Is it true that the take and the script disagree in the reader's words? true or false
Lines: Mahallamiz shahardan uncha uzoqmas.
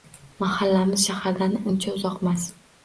false